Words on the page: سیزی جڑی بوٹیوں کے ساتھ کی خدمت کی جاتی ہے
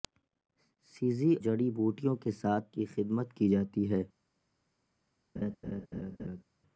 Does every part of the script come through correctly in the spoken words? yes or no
yes